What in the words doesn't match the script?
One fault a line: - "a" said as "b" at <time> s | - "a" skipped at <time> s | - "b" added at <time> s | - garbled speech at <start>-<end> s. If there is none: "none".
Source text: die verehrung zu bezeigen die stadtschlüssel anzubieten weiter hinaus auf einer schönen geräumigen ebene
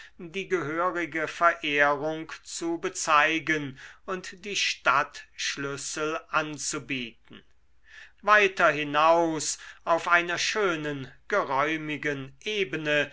- "gehörige" added at 0.5 s
- "und" added at 4.0 s